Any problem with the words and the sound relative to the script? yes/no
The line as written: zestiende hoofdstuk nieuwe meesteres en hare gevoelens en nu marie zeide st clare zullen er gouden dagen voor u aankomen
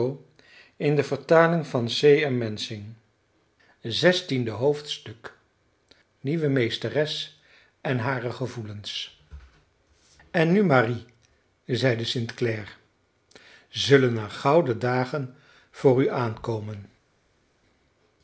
no